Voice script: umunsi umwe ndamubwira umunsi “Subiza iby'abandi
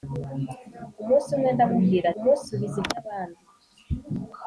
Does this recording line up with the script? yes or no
yes